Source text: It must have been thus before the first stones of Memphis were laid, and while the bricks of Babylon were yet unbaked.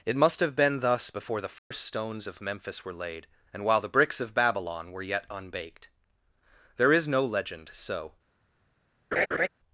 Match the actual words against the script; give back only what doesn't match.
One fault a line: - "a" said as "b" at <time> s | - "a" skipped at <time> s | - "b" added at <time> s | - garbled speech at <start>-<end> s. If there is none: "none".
- "There is no legend so" added at 6.8 s